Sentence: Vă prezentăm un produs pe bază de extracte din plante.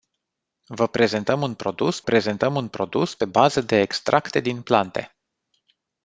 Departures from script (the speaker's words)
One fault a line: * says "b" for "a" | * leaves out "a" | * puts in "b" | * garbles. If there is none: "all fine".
* puts in "prezentăm un produs"